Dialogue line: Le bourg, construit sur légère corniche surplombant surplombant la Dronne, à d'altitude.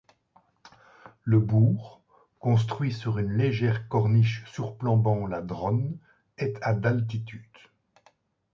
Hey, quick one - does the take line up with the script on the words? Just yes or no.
no